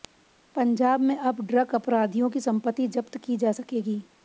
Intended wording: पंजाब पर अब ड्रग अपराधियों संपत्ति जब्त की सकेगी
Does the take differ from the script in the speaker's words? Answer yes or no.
yes